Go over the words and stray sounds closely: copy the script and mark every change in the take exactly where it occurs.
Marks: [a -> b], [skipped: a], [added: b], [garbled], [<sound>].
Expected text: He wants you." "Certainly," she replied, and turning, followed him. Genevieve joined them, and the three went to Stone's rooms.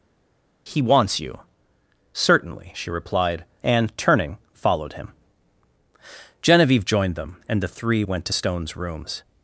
He wants you." "Certainly," she replied, and turning, followed him. Genevieve joined them, and the three went to Stone's rooms.